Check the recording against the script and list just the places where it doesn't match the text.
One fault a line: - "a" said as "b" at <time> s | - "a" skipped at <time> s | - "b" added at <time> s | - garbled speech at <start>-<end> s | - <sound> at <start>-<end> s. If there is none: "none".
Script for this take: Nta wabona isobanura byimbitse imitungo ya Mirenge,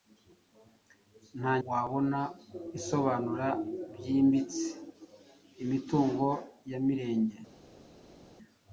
none